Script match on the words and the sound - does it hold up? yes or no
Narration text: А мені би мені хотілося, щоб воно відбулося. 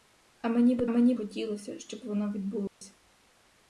no